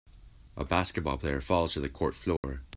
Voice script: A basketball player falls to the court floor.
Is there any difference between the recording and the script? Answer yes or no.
no